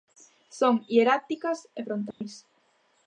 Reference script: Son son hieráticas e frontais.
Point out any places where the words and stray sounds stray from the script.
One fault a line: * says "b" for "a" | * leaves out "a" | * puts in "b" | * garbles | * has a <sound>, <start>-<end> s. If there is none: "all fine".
* leaves out "son"
* has a dropout, 2.1-2.2 s